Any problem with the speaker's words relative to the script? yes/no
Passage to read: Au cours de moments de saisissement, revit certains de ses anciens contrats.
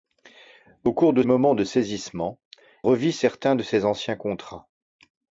no